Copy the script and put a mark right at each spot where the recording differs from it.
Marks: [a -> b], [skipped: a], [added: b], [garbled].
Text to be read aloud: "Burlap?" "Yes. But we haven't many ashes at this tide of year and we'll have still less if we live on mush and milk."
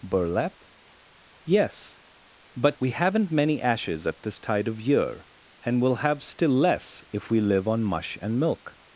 "Burlap?" "Yes. But we haven't many ashes at this tide of year and we'll have still less if we live on mush and milk."